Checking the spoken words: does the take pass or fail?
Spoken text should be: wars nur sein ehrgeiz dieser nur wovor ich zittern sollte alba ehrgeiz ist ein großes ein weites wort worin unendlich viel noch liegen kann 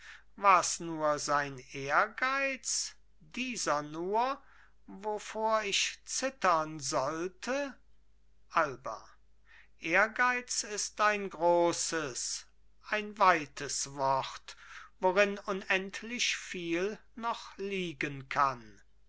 pass